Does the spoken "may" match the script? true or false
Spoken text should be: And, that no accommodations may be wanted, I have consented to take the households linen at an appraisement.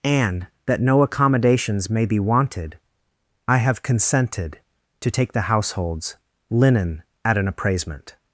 true